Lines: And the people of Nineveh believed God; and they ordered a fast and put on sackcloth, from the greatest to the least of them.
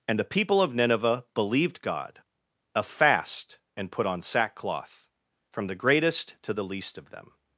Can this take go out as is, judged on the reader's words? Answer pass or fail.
fail